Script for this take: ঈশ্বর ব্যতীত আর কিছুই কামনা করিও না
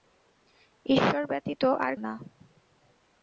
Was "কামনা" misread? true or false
true